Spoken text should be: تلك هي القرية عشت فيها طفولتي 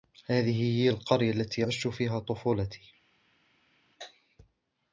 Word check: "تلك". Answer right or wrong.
wrong